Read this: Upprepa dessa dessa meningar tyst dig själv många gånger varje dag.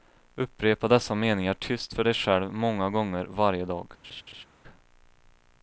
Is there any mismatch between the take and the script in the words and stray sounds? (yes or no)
yes